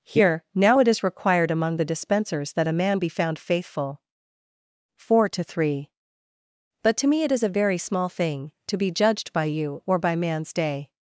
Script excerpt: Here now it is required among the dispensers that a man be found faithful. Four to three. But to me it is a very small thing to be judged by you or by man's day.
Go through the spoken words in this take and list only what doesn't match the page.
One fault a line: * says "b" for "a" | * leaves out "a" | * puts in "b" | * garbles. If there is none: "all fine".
all fine